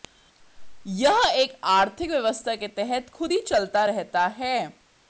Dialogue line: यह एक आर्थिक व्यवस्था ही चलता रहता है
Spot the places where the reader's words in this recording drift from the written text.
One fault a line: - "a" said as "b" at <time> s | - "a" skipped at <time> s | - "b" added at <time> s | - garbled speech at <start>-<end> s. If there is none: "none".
- "के तहत खुद" added at 2.5 s